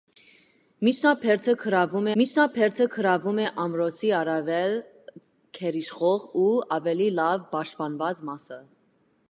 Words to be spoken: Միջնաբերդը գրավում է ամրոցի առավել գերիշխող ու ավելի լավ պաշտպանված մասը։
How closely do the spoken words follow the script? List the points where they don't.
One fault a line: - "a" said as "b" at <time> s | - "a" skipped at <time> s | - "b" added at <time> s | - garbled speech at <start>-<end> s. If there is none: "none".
- "միջնաբերդը գրավում" added at 2.2 s